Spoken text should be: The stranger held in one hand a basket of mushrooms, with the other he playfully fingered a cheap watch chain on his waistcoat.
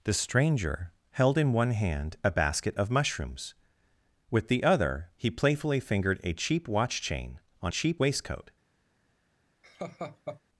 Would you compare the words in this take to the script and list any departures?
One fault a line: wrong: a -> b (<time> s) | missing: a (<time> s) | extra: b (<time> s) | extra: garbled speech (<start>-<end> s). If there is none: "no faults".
wrong: his -> cheap (7.7 s)